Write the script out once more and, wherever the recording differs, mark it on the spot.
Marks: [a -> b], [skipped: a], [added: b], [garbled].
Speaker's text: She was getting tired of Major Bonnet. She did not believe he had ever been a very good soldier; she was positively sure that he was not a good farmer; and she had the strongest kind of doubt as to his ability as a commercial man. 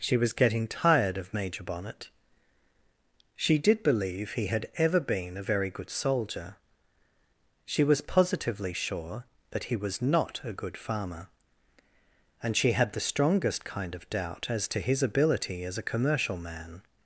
She was getting tired of Major Bonnet. She did [skipped: not] believe he had ever been a very good soldier; she was positively sure that he was not a good farmer; and she had the strongest kind of doubt as to his ability as a commercial man.